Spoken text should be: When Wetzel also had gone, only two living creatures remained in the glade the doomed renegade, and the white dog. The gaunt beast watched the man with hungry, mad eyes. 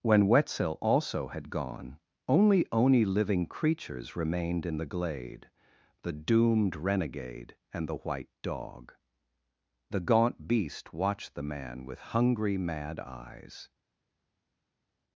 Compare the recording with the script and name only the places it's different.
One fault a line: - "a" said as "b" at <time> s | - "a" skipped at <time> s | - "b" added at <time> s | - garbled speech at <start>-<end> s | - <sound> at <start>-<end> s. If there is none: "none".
- "two" said as "oni" at 2.7 s